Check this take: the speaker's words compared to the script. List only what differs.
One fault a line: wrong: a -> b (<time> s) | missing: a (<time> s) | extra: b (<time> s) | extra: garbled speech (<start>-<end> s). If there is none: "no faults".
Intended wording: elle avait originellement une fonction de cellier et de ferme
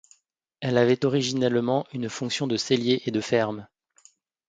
no faults